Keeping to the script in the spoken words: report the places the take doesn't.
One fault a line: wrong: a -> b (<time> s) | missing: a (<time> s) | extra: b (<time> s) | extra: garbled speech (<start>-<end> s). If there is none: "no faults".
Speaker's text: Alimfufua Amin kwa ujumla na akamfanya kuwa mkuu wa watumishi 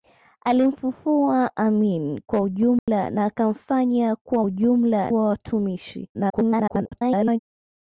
wrong: mkuu -> ujumla (4.4 s)
extra: garbled speech (6.1-7.4 s)